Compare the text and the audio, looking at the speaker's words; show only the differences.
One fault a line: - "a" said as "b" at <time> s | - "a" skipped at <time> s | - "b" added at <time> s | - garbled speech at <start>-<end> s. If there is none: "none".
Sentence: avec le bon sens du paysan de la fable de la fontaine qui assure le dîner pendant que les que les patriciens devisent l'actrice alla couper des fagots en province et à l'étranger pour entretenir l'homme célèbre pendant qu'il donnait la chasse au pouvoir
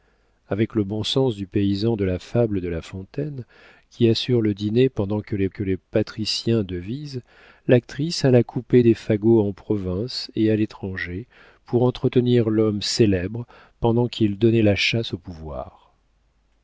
none